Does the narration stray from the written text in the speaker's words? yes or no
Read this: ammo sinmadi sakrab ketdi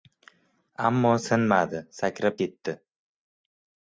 no